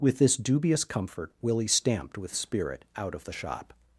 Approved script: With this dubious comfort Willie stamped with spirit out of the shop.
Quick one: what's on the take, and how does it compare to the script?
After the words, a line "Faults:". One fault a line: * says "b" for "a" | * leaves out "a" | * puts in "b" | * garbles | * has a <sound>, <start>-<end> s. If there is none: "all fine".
With this dubious comfort Willie stamped with spirit out of the shop.
Faults:
all fine